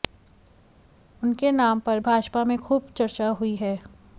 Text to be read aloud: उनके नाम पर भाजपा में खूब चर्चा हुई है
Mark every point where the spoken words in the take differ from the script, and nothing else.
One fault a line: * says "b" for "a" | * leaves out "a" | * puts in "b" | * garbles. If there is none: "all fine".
all fine